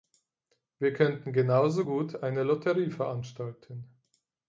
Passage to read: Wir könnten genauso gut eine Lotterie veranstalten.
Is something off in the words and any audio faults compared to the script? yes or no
no